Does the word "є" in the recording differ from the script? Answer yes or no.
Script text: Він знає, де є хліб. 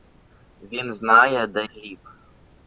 yes